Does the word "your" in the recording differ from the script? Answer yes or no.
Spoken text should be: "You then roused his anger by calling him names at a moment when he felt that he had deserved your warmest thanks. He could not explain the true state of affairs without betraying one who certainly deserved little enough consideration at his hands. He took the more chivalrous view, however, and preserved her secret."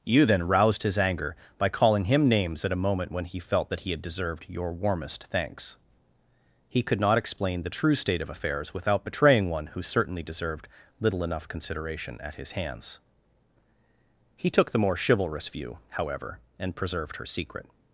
no